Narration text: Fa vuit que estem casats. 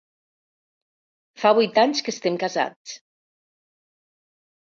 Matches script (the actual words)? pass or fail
fail